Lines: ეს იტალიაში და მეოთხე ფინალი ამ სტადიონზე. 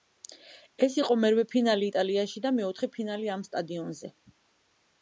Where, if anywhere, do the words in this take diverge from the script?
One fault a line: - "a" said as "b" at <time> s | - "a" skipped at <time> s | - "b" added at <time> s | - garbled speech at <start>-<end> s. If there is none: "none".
- "იყო მერვე ფინალი" added at 1.0 s